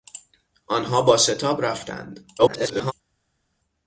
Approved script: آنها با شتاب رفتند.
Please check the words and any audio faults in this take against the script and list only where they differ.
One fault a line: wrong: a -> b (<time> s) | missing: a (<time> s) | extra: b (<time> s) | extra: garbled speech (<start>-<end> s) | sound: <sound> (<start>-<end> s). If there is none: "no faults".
extra: garbled speech (2.4-2.9 s)